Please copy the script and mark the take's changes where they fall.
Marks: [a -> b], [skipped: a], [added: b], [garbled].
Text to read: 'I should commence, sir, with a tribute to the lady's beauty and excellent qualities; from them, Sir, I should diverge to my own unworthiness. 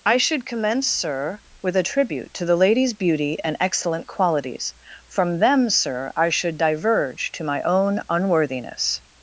'I should commence, sir, with a tribute to the lady's beauty and excellent qualities; from them, Sir, I should diverge to my own unworthiness.